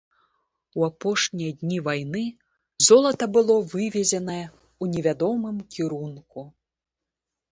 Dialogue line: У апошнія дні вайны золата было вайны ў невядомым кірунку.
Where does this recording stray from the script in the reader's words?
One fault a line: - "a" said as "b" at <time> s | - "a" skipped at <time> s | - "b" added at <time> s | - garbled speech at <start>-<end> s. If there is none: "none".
- "вайны" said as "вывезенае" at 3.7 s